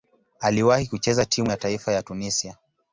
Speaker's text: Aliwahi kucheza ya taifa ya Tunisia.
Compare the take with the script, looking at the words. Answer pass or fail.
fail